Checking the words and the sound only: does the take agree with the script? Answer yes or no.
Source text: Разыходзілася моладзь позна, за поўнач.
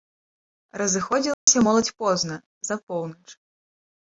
no